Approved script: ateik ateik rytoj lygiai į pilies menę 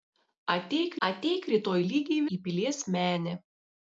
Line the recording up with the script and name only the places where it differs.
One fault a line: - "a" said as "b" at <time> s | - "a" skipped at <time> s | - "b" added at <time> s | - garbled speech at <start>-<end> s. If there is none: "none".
none